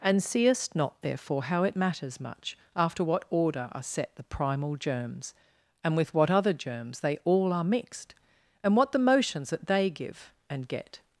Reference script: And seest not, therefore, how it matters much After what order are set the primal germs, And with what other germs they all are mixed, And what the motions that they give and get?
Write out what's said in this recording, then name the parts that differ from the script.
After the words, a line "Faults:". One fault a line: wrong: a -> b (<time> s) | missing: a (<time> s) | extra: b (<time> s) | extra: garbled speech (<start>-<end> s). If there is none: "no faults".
And seest not, therefore, how it matters much After what order are set the primal germs, And with what other germs they all are mixed, And what the motions that they give and get?
Faults:
no faults